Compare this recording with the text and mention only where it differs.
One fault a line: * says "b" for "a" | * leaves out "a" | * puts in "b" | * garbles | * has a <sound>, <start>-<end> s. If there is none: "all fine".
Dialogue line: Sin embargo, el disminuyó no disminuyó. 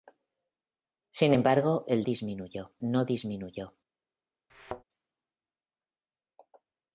* has a thud, 4.5-4.8 s